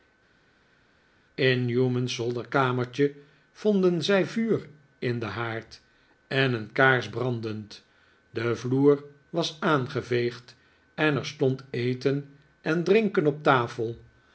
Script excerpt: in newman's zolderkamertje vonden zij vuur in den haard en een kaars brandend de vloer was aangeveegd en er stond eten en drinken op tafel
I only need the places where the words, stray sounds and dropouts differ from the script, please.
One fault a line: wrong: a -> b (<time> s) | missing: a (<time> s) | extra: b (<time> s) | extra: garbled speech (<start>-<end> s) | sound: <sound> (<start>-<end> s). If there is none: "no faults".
no faults